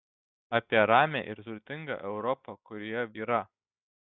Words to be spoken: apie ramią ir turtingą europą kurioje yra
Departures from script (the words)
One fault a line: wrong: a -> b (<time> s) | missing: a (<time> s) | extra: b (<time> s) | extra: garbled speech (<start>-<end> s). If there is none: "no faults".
no faults